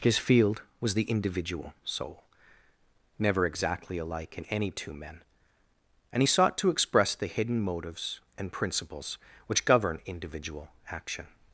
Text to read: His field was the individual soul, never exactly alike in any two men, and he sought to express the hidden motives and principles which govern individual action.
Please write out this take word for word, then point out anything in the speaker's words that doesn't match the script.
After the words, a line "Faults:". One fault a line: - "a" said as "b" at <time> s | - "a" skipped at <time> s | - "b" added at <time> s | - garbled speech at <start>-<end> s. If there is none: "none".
His field was the individual soul, never exactly alike in any two men, and he sought to express the hidden motives and principles which govern individual action.
Faults:
none